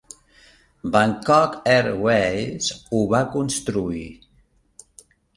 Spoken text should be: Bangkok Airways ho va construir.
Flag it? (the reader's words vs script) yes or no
no